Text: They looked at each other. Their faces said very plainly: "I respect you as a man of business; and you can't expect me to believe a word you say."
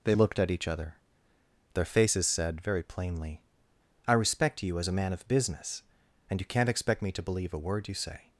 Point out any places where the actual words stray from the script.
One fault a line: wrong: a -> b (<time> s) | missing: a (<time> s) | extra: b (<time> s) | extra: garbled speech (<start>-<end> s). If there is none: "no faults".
no faults